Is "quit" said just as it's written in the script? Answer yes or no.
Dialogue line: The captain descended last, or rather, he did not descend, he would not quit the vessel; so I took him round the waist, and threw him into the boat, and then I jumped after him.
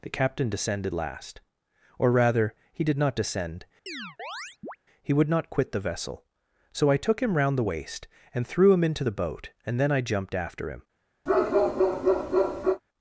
yes